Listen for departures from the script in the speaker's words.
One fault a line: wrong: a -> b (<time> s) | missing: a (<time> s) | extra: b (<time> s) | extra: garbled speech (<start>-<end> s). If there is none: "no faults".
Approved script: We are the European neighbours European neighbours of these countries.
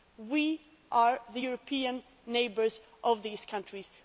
missing: European neighbours (2.8 s)